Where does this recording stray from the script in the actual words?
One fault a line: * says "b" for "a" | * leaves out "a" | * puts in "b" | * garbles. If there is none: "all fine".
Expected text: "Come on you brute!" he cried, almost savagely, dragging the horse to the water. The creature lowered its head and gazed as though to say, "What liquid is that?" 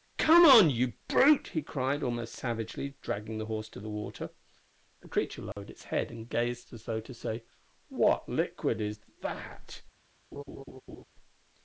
all fine